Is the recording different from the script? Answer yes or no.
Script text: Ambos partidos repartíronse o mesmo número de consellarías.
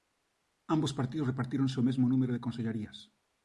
no